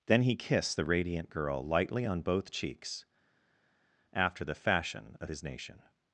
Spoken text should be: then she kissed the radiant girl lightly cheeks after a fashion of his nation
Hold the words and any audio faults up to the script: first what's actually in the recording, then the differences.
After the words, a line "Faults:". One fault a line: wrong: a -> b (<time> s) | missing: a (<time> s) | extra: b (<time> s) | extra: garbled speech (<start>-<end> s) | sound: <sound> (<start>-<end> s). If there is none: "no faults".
then he kissed the radiant girl lightly on both cheeks after the fashion of his nation
Faults:
wrong: she -> he (0.2 s)
extra: on both (2.0 s)
wrong: a -> the (4.4 s)